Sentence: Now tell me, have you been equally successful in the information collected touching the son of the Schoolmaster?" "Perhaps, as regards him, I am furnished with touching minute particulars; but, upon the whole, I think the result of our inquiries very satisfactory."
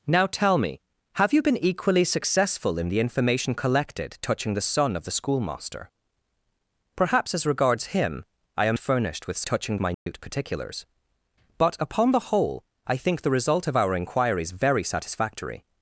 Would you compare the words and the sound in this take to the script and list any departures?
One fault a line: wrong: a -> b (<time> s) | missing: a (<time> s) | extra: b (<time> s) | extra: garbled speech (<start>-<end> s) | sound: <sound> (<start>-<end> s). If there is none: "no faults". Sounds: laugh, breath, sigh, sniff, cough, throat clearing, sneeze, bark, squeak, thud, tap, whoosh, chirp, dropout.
sound: dropout (9.9-10.1 s)